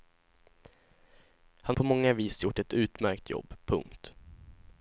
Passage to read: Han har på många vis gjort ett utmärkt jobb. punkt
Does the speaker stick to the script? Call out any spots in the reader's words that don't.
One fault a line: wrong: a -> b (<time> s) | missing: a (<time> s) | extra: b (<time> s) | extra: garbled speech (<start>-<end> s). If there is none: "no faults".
missing: har (1.8 s)